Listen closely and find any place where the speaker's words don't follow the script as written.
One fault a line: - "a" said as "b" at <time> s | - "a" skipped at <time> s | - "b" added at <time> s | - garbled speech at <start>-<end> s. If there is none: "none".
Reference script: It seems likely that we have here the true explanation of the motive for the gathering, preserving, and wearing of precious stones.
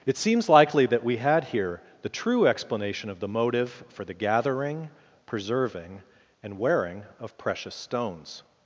- "have" said as "had" at 1.2 s